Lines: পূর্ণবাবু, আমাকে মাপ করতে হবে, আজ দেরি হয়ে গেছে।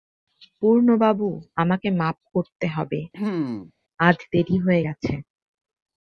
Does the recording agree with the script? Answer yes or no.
yes